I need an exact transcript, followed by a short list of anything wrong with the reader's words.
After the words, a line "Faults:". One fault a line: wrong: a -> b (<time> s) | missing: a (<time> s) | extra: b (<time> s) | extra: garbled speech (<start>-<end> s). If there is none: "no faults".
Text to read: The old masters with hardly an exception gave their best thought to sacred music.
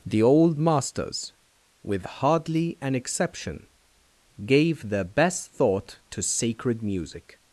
The old masters with hardly an exception gave their best thought to sacred music.
Faults:
no faults